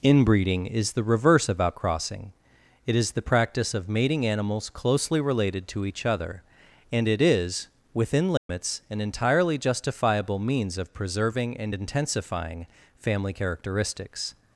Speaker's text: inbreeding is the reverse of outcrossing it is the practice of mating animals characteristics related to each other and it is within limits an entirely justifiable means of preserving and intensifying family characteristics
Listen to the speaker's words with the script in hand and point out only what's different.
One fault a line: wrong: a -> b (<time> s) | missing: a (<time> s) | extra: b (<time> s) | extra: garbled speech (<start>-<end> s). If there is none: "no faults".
wrong: characteristics -> closely (4.7 s)